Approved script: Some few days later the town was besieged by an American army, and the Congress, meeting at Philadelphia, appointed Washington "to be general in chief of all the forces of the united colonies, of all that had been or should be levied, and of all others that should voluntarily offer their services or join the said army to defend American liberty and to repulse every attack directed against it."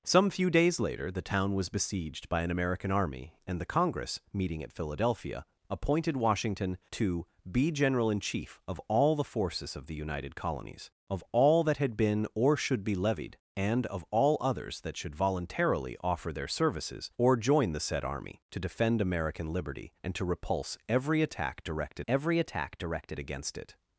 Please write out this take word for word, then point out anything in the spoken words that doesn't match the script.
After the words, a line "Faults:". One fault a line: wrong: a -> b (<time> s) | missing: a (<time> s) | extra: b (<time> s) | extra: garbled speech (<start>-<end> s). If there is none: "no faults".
Some few days later the town was besieged by an American army, and the Congress, meeting at Philadelphia, appointed Washington "to be general in chief of all the forces of the united colonies, of all that had been or should be levied, and of all others that should voluntarily offer their services or join the said army to defend American liberty and to repulse every attack directed every attack directed against it."
Faults:
extra: every attack directed (22.1 s)